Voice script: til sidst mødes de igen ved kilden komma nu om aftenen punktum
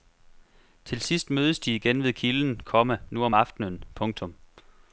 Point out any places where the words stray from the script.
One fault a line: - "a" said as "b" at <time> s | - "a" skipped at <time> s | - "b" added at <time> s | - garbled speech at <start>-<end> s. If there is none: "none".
none